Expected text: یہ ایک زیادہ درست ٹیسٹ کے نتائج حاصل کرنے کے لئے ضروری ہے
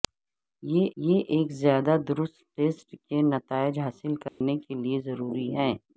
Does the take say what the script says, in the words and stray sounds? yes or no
no